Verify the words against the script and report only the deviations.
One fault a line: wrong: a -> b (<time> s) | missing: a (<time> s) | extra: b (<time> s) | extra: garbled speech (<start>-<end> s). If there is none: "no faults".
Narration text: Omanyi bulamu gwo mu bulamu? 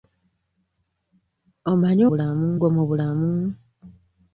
no faults